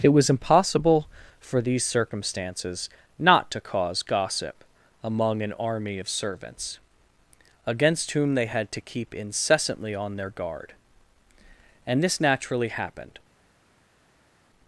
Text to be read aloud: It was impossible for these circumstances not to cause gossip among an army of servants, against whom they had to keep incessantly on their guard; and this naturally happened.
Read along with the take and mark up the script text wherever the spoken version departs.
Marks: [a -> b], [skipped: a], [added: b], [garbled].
It was impossible for these circumstances not to cause gossip among an army of servants, against whom they had to keep incessantly on their guard; and this naturally happened.